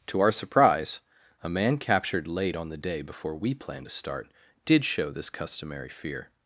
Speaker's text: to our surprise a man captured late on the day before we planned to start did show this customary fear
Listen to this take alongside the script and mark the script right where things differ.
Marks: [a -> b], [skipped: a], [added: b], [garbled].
to our surprise a man captured late on the day before we planned to start did show this customary fear